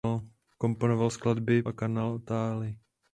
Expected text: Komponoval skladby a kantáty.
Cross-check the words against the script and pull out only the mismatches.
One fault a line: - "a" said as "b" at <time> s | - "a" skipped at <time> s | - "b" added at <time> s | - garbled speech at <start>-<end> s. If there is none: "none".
none